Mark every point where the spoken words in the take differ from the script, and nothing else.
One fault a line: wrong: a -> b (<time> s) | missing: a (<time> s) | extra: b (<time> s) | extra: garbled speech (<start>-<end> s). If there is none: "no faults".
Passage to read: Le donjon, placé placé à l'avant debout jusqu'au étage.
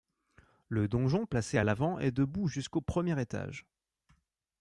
missing: placé (1.6 s)
extra: est (2.0 s)
extra: premier (2.8 s)